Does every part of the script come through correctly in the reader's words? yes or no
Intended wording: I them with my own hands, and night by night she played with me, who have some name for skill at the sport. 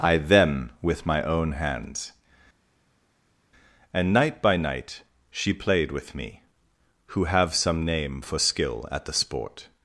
yes